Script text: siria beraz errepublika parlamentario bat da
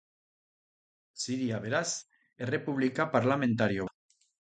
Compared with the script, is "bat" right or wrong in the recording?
wrong